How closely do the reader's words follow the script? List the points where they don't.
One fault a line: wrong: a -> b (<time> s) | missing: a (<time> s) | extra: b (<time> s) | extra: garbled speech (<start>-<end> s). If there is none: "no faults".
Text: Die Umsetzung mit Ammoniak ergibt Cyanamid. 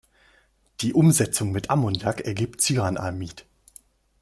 no faults